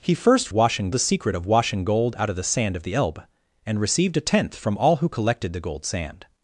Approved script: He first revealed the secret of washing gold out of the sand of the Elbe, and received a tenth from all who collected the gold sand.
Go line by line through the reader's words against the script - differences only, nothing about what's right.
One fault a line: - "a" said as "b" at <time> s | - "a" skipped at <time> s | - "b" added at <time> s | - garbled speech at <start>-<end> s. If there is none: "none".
- "revealed" said as "washing" at 0.5 s